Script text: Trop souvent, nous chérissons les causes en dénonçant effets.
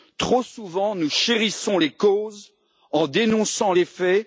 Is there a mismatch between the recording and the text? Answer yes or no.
no